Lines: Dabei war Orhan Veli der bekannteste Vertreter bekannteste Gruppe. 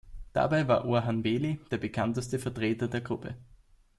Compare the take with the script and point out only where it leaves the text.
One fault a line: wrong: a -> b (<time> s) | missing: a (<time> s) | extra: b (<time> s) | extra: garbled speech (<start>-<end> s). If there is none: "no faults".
wrong: bekannteste -> der (2.9 s)